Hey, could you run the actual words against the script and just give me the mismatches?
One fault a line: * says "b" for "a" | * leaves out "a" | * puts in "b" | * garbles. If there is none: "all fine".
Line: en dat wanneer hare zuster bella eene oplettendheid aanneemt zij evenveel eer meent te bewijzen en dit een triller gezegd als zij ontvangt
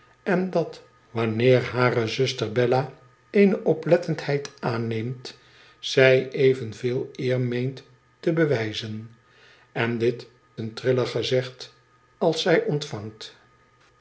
all fine